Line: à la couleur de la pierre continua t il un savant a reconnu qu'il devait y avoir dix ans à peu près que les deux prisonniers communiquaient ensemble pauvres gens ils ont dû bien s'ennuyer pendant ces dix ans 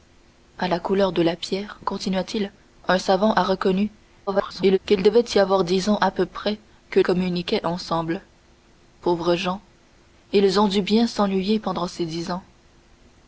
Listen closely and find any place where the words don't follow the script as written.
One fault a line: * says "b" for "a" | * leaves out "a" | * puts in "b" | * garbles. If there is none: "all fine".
* garbles
* leaves out "les deux prisonniers"